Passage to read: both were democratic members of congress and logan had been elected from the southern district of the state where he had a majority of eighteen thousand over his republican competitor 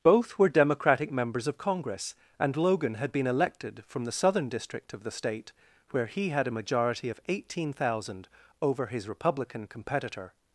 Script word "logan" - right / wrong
right